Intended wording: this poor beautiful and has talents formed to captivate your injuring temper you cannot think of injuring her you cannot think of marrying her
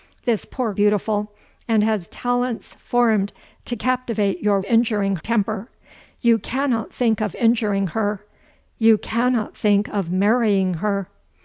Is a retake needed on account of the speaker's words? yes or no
no